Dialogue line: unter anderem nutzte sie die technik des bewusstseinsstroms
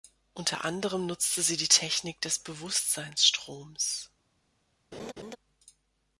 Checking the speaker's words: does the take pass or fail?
pass